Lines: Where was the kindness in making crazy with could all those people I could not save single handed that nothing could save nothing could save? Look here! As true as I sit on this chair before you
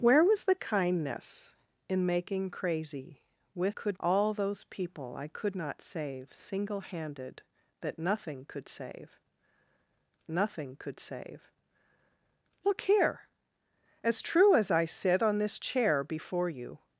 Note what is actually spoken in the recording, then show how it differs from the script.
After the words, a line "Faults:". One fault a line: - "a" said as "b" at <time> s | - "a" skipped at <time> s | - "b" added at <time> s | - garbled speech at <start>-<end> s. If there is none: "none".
Where was the kindness in making crazy with could all those people I could not save single handed that nothing could save nothing could save? Look here! As true as I sit on this chair before you
Faults:
none